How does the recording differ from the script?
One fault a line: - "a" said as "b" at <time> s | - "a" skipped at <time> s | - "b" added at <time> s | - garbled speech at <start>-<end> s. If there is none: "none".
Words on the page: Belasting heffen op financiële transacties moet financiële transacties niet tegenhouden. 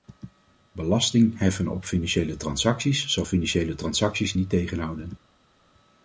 - "moet" said as "zal" at 3.1 s